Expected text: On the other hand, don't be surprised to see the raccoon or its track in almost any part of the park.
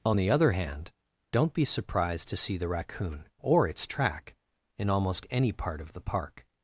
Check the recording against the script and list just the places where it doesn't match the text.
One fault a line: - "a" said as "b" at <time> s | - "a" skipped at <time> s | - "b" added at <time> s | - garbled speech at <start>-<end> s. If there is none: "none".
none